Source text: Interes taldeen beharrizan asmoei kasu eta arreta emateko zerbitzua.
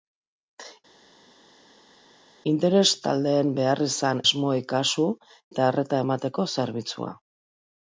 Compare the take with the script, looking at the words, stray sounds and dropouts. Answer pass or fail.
pass